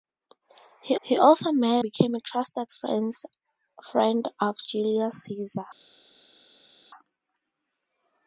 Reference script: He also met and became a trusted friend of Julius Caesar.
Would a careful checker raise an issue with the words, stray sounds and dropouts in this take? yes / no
yes